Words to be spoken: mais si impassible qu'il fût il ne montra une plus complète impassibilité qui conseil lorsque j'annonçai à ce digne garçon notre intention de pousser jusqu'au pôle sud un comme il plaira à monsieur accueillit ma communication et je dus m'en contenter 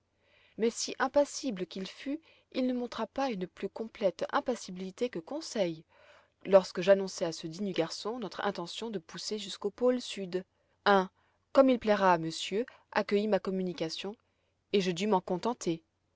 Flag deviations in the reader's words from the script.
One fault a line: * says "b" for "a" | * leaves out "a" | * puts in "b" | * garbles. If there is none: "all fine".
* puts in "pas"
* says "que" for "qui"